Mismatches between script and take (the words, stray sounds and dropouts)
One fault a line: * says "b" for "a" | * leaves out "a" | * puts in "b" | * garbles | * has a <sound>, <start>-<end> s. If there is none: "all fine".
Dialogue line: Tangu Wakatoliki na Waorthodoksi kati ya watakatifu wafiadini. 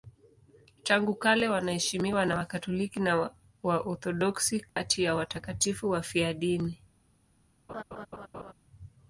* puts in "kale wanaheshimiwa na"
* has a dropout, 4.7-4.8 s
* has a laugh, 7.7-8.5 s